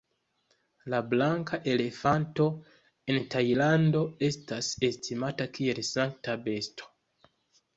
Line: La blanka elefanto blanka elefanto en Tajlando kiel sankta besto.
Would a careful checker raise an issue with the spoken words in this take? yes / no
yes